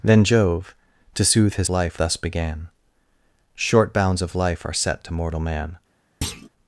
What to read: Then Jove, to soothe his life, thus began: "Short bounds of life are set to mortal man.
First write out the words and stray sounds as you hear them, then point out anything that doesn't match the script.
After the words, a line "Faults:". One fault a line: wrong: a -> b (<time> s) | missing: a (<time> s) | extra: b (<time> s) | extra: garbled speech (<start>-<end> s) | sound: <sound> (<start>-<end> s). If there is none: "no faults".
Then Jove, to soothe his life, thus began: "Short bounds of life are set to mortal man.
Faults:
sound: thud (6.2-6.5 s)